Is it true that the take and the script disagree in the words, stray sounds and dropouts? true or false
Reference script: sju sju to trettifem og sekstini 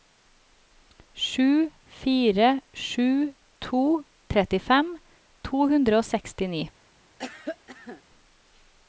true